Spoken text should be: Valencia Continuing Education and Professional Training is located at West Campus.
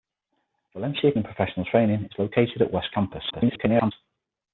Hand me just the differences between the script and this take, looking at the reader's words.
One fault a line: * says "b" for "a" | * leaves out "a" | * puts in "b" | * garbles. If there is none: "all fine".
* leaves out "Continuing Education"
* garbles